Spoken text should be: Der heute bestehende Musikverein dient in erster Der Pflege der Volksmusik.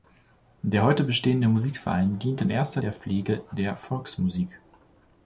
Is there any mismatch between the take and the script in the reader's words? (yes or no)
no